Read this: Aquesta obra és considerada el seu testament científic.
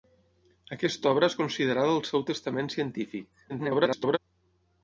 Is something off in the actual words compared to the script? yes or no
yes